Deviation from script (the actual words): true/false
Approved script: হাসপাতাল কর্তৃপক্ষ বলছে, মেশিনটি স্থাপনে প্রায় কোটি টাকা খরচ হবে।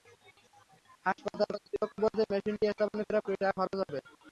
false